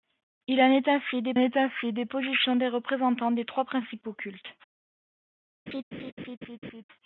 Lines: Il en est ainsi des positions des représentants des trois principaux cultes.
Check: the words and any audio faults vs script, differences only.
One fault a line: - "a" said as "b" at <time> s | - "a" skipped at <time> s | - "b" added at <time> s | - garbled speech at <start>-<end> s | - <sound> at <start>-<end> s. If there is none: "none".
- "est ainsi des" added at 1.4 s
- laugh at 5.7-6.8 s